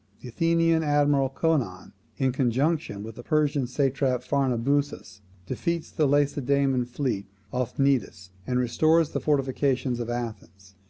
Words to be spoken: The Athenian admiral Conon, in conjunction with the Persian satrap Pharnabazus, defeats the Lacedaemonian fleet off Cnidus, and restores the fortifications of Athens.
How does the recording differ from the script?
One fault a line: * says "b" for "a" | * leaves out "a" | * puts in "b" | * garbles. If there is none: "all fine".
all fine